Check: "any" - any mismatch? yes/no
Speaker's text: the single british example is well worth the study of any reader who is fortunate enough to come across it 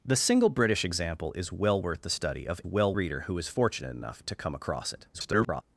yes